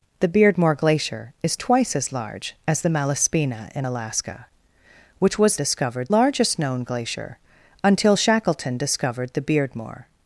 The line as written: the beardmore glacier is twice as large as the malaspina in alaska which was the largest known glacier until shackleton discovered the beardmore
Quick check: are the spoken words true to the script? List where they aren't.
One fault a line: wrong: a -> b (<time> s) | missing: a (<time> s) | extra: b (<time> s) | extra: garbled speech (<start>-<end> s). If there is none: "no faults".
wrong: the -> discovered (5.6 s)